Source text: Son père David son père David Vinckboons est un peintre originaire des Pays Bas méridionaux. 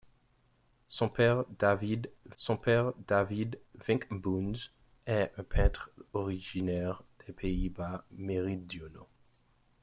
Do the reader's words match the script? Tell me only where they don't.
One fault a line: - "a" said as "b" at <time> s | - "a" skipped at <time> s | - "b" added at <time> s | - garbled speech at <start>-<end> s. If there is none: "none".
none